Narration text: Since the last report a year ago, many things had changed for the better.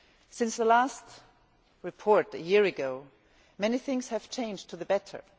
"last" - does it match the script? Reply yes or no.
yes